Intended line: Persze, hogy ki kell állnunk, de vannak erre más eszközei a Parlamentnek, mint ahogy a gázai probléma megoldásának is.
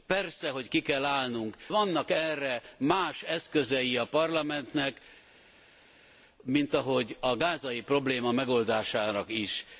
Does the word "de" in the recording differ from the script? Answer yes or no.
yes